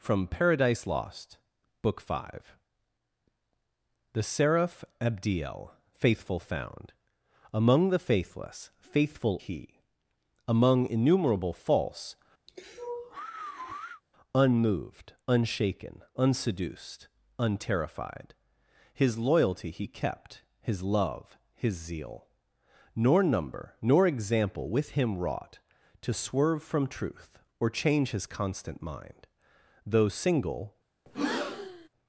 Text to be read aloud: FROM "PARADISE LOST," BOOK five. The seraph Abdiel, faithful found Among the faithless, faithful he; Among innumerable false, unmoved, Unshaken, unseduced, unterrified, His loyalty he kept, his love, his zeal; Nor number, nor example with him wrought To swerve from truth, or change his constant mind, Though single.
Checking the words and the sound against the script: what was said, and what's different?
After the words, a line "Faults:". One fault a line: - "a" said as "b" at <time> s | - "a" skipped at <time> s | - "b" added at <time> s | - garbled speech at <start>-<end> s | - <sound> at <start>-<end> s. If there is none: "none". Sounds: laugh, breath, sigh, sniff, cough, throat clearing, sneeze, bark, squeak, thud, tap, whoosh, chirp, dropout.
FROM "PARADISE LOST," BOOK five. The seraph Abdiel, faithful found Among the faithless, faithful he; Among innumerable false, unmoved, Unshaken, unseduced, unterrified, His loyalty he kept, his love, his zeal; Nor number, nor example with him wrought To swerve from truth, or change his constant mind, Though single.
Faults:
- sigh at 12.5-14.0 s
- breath at 31.1-31.9 s